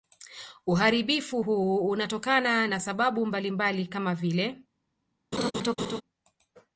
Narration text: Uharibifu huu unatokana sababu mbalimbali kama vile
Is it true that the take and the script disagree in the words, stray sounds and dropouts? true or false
true